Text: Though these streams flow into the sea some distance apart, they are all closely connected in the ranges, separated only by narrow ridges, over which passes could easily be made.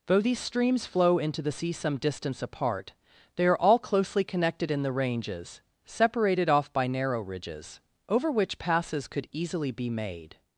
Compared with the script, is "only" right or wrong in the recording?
wrong